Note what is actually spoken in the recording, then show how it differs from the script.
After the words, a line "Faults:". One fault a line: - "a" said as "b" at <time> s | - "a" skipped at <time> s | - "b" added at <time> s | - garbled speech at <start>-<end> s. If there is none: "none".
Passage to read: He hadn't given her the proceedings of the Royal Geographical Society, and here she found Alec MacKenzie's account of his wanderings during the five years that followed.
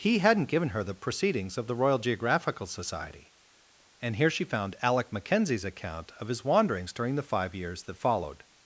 He hadn't given her the proceedings of the Royal Geographical Society, and here she found Alec MacKenzie's account of his wanderings during the five years that followed.
Faults:
none